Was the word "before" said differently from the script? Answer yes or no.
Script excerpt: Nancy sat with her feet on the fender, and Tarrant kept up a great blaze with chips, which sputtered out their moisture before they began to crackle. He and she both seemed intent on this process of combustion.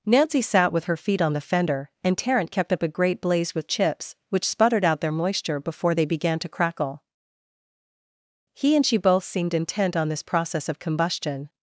no